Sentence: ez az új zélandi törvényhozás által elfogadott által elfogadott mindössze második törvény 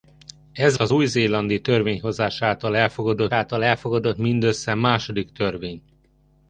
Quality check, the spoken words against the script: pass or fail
pass